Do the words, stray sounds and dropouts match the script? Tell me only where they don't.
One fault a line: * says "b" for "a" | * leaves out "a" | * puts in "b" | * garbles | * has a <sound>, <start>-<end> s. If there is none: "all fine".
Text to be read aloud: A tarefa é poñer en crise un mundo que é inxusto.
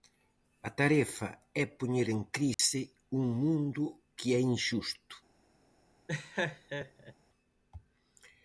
* has a dropout, 2.5-2.6 s
* has a laugh, 6.1-7.1 s